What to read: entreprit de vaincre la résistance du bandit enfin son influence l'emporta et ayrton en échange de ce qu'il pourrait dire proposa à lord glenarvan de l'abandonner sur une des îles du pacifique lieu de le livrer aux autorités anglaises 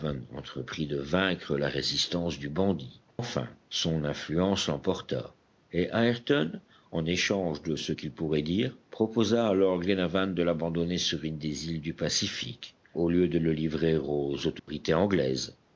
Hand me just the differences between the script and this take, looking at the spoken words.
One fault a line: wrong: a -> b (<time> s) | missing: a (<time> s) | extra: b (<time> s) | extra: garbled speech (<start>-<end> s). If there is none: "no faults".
extra: au (12.9 s)